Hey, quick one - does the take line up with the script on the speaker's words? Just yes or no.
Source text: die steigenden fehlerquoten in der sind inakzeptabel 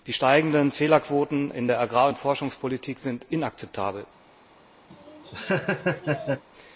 no